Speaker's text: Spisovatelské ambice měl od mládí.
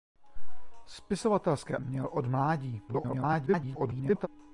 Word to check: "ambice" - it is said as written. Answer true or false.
false